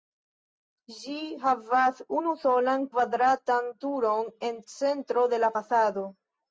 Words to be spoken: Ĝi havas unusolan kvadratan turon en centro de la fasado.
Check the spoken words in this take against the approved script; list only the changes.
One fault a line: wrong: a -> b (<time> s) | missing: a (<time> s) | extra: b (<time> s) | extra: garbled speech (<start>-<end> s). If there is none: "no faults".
no faults